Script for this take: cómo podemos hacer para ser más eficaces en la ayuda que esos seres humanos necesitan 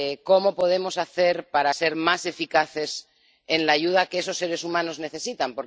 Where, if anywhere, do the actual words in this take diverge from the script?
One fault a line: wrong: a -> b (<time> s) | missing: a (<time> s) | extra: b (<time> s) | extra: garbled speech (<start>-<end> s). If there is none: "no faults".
no faults